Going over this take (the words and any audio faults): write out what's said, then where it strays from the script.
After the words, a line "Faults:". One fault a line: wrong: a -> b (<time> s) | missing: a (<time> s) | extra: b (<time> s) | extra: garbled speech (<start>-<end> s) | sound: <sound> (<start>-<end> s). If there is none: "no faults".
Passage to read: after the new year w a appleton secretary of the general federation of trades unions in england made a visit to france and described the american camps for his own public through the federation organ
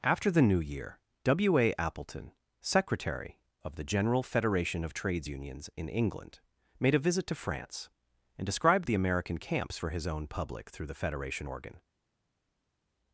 after the new year w a appleton secretary of the general federation of trades unions in england made a visit to france and described the american camps for his own public through the federation organ
Faults:
no faults